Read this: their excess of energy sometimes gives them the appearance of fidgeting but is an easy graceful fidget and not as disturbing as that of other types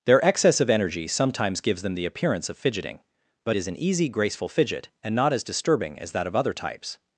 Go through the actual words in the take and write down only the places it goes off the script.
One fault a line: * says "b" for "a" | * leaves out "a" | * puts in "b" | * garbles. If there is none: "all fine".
all fine